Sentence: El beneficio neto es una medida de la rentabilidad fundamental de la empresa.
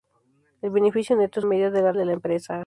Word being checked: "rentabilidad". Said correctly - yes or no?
no